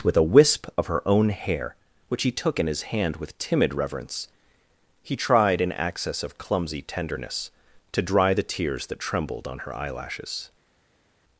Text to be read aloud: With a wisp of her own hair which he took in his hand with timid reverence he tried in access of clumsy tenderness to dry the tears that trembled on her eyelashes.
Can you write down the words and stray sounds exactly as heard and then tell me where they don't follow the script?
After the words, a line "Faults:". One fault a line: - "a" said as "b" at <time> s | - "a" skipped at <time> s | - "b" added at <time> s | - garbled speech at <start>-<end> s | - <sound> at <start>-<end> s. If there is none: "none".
With a wisp of her own hair which he took in his hand with timid reverence he tried in access of clumsy tenderness to dry the tears that trembled on her eyelashes.
Faults:
none